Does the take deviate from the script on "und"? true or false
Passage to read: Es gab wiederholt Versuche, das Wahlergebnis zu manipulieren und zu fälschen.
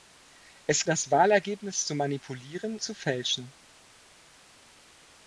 true